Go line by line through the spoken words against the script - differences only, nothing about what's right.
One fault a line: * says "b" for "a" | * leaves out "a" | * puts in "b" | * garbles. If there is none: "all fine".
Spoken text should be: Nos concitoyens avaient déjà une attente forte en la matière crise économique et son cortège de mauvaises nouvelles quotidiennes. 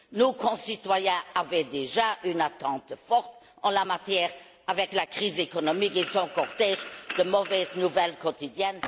* puts in "avec la"